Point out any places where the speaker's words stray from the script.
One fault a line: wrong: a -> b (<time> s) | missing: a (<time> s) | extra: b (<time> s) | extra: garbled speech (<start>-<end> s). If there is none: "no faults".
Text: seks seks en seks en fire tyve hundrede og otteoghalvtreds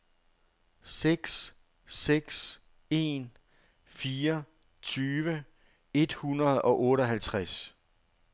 missing: seks en (3.3 s)
extra: et (5.9 s)